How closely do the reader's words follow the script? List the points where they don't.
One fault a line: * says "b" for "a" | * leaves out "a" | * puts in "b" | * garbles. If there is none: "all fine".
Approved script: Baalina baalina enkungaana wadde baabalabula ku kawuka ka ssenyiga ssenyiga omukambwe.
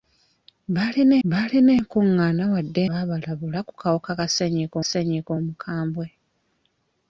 all fine